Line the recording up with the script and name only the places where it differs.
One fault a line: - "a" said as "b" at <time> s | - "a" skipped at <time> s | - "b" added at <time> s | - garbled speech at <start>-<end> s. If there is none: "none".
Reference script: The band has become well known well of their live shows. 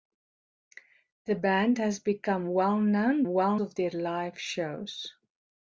none